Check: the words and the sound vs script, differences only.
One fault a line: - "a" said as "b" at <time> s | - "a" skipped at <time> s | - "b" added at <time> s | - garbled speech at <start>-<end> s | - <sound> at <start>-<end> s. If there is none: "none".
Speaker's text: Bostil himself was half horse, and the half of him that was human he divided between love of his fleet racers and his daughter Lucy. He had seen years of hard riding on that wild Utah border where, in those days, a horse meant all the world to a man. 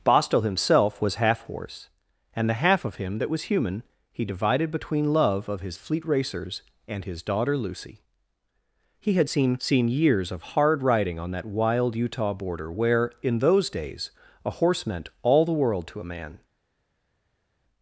- "seen" added at 9.6 s